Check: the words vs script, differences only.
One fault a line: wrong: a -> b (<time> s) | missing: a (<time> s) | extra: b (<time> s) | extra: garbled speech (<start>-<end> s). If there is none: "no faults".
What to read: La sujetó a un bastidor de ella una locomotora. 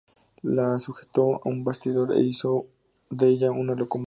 extra: e hizo (2.1 s)